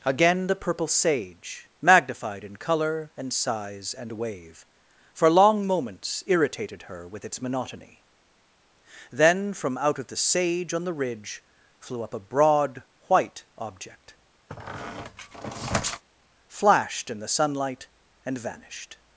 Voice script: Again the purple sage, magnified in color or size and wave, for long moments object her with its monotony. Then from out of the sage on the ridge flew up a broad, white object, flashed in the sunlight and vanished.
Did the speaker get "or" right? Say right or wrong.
wrong